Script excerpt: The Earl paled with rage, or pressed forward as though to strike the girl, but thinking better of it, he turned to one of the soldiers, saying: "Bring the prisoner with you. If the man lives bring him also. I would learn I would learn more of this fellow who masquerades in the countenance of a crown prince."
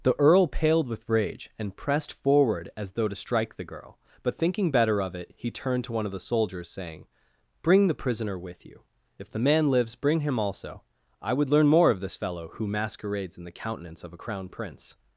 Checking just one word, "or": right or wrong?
wrong